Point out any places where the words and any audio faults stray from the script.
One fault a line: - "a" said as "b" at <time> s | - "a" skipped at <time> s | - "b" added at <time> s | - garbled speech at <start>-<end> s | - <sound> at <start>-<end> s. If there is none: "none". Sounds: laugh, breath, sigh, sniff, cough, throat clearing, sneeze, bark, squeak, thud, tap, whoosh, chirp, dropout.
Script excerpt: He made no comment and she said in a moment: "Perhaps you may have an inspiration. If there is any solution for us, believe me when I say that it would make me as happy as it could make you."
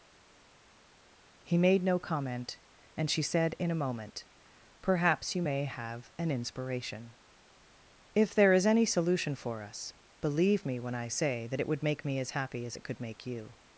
none